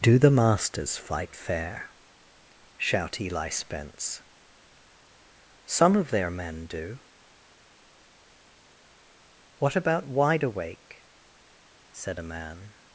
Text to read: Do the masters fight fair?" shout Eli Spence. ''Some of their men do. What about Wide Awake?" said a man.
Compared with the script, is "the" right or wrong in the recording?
right